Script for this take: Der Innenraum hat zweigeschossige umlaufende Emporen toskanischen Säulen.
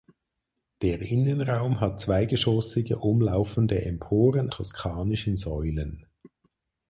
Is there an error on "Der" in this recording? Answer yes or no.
no